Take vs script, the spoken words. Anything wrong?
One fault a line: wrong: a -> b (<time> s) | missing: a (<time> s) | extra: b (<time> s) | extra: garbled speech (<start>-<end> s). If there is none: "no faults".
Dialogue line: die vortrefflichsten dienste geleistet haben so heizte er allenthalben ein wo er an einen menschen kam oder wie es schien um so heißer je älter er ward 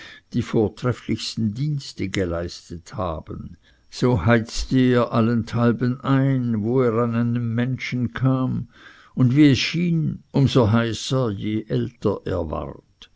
wrong: oder -> und (9.1 s)